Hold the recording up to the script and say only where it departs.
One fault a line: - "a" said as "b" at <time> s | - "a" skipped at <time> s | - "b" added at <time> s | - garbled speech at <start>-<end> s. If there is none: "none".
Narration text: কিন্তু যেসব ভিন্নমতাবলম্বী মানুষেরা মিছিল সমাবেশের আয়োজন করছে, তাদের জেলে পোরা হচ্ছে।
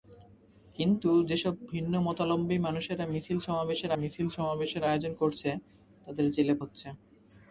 - "মিছিল সমাবেশের" added at 4.0 s
- "পোরা" skipped at 6.5 s